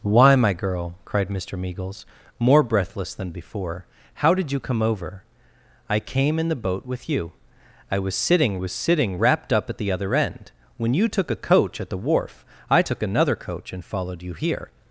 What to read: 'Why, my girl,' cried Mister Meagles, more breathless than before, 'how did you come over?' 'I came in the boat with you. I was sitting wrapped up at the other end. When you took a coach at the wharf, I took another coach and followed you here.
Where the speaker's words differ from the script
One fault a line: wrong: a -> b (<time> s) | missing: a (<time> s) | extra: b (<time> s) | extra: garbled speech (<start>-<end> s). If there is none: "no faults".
extra: was sitting (8.6 s)